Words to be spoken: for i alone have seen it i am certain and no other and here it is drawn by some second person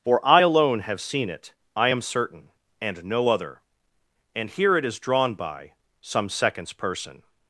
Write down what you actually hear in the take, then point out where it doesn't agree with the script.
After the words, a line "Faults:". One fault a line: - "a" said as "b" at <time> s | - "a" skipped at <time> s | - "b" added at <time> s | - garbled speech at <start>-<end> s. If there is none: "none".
for i alone have seen it i am certain and no other and here it is drawn by some seconds person
Faults:
- "second" said as "seconds" at 6.3 s